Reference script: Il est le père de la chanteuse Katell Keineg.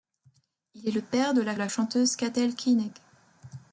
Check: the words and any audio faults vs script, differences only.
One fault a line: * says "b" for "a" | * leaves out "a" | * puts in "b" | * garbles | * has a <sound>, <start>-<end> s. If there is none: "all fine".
* puts in "la"